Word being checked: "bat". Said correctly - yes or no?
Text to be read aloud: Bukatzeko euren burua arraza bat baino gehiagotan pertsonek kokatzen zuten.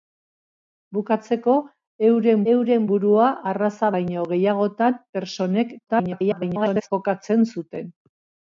no